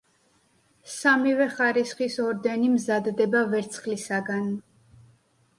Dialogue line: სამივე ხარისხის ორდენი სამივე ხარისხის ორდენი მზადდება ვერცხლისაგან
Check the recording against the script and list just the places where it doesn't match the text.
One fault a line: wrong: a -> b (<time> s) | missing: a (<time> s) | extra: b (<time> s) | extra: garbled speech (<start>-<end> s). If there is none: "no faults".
missing: სამივე ხარისხის ორდენი (2.7 s)